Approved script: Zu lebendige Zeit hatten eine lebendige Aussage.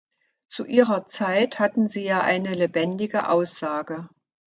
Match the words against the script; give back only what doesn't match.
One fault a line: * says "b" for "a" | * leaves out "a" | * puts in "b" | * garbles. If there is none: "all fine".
* says "ihrer" for "lebendige"
* puts in "sie ja"